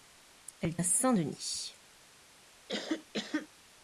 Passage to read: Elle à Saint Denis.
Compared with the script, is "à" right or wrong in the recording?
right